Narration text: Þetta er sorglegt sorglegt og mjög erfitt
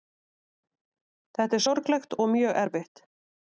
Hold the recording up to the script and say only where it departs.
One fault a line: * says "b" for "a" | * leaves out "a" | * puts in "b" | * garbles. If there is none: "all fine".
* leaves out "sorglegt"